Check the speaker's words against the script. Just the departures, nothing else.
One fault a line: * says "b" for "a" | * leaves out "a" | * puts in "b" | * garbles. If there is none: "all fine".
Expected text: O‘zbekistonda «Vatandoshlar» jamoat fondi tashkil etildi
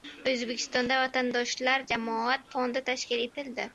all fine